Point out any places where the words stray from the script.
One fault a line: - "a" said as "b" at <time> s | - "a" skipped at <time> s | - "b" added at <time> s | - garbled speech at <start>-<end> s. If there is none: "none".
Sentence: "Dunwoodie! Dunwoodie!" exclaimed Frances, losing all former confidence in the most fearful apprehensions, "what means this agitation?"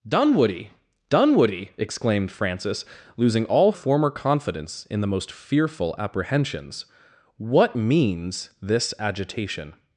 none